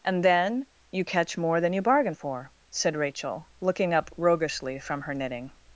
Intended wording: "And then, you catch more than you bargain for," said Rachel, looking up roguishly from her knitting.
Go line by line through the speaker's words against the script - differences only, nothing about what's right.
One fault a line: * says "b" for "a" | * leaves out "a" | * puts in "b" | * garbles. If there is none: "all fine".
all fine